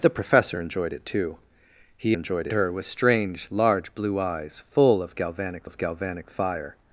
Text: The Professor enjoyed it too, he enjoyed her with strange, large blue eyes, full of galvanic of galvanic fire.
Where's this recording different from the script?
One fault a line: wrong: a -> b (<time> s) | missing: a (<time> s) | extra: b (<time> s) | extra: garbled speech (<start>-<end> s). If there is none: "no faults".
no faults